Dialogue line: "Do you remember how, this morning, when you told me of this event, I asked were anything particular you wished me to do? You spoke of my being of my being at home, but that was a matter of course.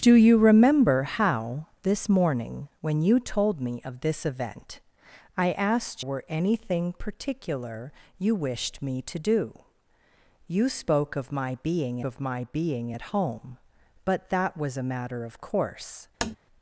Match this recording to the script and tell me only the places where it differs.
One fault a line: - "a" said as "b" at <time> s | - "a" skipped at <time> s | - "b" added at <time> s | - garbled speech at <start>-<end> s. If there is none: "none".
none